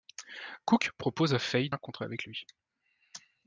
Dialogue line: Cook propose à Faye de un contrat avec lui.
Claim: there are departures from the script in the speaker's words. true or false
false